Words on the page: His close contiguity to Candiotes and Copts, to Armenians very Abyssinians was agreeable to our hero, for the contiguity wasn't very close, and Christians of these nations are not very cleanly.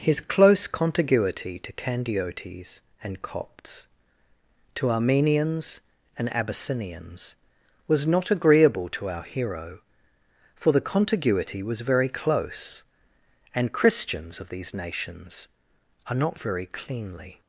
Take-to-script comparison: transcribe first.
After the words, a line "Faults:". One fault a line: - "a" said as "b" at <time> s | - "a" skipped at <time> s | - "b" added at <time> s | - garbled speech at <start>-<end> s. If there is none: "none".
His close contiguity to Candiotes and Copts, to Armenians and Abyssinians was not agreeable to our hero, for the contiguity was very close, and Christians of these nations are not very cleanly.
Faults:
- "very" said as "and" at 6.2 s
- "not" added at 8.1 s
- "wasn't" said as "was" at 11.6 s